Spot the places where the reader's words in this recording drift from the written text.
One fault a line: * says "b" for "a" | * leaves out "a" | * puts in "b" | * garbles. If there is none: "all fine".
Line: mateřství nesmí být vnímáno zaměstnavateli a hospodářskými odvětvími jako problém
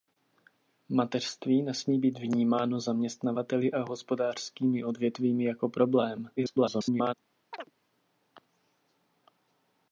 * garbles